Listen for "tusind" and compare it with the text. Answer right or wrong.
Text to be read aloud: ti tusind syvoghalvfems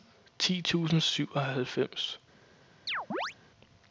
right